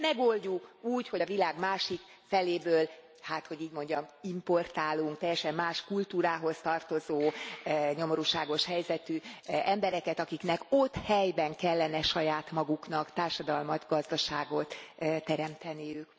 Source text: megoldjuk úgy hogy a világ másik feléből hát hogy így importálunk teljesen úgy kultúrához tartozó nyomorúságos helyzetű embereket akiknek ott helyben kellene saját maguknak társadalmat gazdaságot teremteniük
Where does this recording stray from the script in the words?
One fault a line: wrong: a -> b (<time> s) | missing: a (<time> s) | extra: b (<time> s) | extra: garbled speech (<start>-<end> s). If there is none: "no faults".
extra: mondjam (3.7 s)
wrong: úgy -> más (5.5 s)